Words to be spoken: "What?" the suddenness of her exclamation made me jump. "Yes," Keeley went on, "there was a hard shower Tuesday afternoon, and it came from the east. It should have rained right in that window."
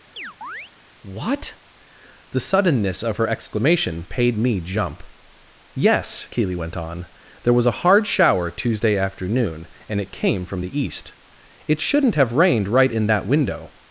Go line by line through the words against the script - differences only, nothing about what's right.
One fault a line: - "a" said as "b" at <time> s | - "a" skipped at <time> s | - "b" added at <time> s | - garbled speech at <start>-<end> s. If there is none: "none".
- "made" said as "paid" at 4.0 s
- "should" said as "shouldn't" at 11.8 s